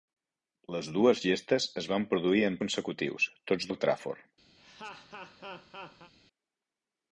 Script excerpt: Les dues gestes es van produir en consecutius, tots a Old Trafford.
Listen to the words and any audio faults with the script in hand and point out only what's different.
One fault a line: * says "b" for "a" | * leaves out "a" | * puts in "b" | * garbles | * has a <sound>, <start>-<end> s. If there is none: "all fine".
* has a laugh, 4.6-6.1 s